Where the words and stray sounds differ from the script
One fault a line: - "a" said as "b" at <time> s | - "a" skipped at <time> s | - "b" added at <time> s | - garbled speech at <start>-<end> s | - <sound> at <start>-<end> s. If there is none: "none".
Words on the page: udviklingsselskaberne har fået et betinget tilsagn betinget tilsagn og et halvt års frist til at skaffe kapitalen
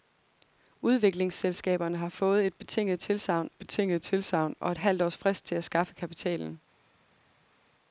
none